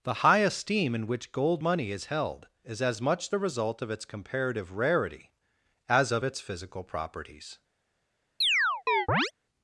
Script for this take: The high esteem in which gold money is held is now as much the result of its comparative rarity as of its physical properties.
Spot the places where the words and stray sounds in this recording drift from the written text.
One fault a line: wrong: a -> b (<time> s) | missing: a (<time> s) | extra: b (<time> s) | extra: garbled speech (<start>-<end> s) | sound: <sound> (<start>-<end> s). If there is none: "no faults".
missing: now (2.8 s)
sound: chirp (8.4-9.3 s)